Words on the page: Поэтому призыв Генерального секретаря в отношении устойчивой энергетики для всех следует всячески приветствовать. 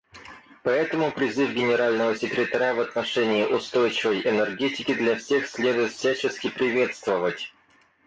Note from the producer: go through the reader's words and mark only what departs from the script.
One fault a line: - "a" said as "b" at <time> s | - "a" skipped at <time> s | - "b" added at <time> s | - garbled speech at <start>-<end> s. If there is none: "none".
none